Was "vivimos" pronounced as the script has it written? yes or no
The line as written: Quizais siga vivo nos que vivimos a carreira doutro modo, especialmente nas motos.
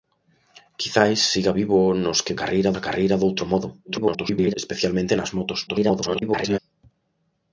no